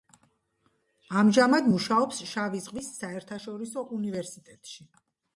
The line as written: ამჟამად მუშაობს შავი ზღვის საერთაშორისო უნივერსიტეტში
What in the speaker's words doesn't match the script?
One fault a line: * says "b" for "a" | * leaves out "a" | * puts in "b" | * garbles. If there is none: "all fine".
all fine